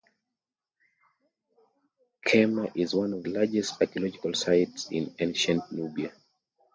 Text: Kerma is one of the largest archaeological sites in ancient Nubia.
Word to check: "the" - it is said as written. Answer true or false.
false